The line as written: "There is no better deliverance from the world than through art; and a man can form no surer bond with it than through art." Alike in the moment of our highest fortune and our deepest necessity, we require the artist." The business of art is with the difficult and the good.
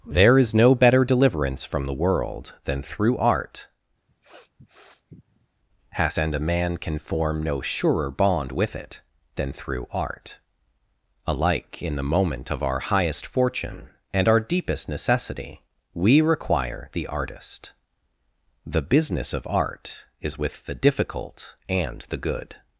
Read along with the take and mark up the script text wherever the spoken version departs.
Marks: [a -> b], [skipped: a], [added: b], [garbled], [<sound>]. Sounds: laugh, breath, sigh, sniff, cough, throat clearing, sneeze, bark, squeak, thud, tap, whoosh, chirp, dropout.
"There is no better deliverance from the world than through art; [sniff] [added: has] and a man can form no surer bond with it than through art." Alike in the moment of our highest fortune and our deepest necessity, we require the artist." The business of art is with the difficult and the good.